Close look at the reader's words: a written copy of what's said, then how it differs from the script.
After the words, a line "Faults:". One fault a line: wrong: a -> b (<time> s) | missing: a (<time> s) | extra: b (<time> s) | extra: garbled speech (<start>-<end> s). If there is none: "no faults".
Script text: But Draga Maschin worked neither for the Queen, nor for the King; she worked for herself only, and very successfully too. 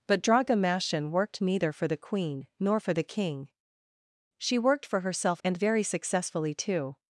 But Draga Maschin worked neither for the Queen, nor for the King; she worked for herself and very successfully too.
Faults:
missing: only (5.4 s)